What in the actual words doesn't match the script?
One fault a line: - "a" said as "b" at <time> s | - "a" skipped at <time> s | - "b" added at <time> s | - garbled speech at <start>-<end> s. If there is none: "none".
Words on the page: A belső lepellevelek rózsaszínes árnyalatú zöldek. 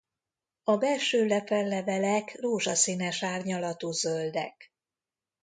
none